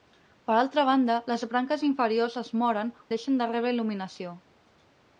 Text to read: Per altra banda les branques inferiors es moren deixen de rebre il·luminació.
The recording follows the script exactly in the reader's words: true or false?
true